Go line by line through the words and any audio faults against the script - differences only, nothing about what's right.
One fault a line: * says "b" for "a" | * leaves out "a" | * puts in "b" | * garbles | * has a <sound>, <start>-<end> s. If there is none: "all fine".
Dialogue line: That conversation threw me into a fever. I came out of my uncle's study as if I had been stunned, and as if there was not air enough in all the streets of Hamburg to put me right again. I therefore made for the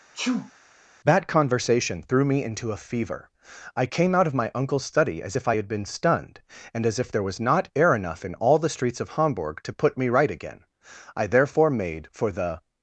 * has a sneeze, 0.1-0.5 s